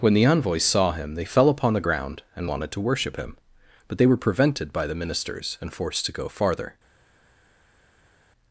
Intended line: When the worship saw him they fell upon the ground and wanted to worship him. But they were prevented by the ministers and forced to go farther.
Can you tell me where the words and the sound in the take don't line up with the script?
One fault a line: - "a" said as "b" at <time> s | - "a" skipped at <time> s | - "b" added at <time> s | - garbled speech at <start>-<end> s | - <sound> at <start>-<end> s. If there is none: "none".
- "worship" said as "envoys" at 0.2 s